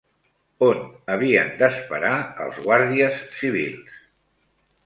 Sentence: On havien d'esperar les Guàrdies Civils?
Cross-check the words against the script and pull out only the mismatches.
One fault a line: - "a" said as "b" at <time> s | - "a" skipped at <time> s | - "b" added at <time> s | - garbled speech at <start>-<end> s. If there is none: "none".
- "les" said as "els" at 2.5 s